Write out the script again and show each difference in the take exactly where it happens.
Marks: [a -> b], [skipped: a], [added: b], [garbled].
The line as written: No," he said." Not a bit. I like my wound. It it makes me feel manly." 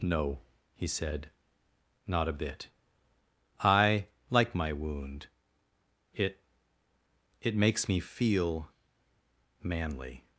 No," he said." Not a bit. I like my wound. It it makes me feel manly."